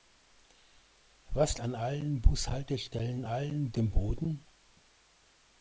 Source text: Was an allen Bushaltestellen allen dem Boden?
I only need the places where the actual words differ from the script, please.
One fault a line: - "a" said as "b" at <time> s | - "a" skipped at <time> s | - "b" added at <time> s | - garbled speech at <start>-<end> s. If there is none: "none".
none